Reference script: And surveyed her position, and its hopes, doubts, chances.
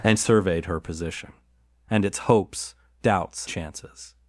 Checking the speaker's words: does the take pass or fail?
pass